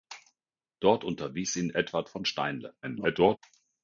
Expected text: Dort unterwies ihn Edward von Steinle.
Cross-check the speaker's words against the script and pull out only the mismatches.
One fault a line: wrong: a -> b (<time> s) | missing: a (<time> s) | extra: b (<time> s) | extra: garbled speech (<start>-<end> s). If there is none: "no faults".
extra: garbled speech (2.8-3.4 s)